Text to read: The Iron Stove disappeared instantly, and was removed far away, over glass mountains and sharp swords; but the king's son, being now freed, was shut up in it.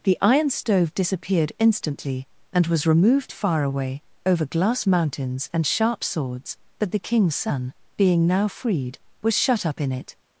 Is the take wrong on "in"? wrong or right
right